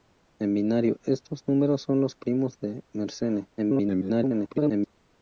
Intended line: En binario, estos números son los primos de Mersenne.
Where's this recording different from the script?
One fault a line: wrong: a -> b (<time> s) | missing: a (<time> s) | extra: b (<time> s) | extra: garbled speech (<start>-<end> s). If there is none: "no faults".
extra: garbled speech (3.6-4.9 s)